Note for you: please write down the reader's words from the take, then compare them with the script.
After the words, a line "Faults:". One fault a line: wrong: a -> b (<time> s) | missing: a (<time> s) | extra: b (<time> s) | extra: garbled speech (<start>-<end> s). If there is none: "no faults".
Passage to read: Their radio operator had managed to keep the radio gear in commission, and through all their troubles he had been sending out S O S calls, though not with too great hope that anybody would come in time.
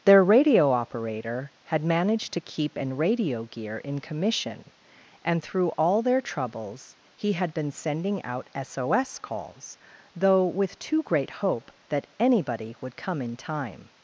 Their radio operator had managed to keep an radio gear in commission, and through all their troubles he had been sending out S O S calls, though with too great hope that anybody would come in time.
Faults:
wrong: the -> an (2.8 s)
missing: not (10.5 s)